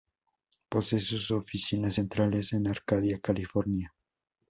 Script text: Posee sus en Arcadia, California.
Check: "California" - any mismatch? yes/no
no